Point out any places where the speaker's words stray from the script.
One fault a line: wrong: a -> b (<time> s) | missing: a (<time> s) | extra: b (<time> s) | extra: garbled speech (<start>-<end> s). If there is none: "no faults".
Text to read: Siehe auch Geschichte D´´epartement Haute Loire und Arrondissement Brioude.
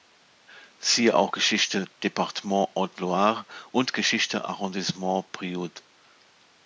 extra: Geschichte (3.9 s)